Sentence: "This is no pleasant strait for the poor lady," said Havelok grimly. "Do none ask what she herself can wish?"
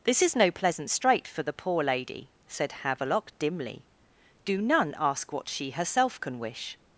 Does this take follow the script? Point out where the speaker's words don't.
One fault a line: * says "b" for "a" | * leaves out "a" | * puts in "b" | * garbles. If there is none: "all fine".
* says "dimly" for "grimly"